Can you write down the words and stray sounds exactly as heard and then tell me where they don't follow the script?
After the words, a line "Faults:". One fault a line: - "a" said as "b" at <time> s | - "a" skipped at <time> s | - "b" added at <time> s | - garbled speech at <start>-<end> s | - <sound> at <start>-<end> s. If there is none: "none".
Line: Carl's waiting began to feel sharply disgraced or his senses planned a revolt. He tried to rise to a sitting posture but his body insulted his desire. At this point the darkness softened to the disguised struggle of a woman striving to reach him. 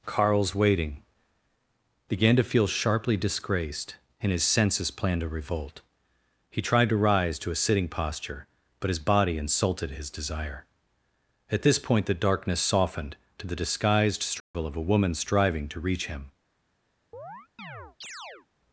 Carl's waiting began to feel sharply disgraced and his senses planned a revolt. He tried to rise to a sitting posture but his body insulted his desire. At this point the darkness softened to the disguised struggle of a woman striving to reach him.
Faults:
- "or" said as "and" at 4.2 s
- dropout at 14.4-14.5 s
- chirp at 17.1-18.5 s